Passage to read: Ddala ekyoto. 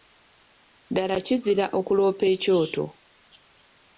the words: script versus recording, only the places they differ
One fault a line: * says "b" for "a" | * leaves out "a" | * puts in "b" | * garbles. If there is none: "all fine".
* puts in "kizira okuloopa"